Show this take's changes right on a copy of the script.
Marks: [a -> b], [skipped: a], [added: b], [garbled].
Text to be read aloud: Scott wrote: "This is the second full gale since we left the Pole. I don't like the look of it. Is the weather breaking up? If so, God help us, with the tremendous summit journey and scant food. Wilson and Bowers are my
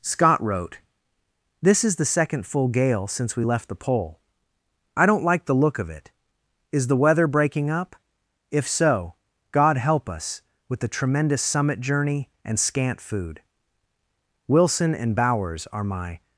Scott wrote: "This is the second full gale since we left the Pole. I don't like the look of it. Is the weather breaking up? If so, God help us, with the tremendous summit journey and scant food. Wilson and Bowers are my